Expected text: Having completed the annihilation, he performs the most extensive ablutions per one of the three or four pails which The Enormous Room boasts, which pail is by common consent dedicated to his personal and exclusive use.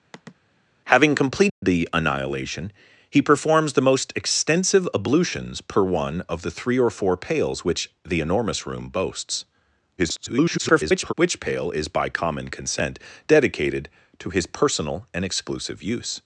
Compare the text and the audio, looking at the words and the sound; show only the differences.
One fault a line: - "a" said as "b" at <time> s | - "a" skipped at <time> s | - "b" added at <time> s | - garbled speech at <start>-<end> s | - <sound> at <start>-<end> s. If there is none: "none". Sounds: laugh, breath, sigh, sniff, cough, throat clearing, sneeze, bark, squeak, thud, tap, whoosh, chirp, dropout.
- sigh at 0.1-0.4 s
- dropout at 1.5-1.6 s
- garbled speech at 10.0-11.1 s